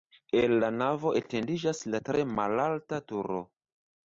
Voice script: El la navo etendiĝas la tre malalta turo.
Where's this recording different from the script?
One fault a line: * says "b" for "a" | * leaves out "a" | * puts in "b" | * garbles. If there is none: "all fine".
all fine